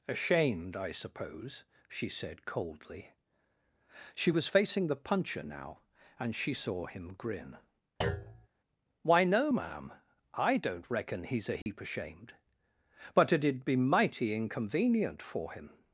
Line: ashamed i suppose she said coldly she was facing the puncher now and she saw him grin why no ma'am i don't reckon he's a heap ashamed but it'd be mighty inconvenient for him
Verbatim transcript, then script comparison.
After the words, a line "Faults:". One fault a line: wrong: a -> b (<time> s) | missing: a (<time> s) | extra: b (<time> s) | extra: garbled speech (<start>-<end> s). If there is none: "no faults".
ashamed i suppose she said coldly she was facing the puncher now and she saw him grin why no ma'am i don't reckon he's a heap ashamed but it'd be mighty inconvenient for him
Faults:
no faults